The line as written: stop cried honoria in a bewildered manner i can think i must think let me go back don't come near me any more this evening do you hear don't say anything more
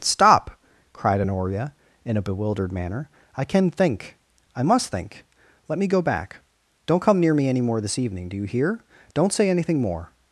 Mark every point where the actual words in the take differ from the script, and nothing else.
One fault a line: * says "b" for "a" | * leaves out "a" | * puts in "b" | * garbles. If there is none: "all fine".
all fine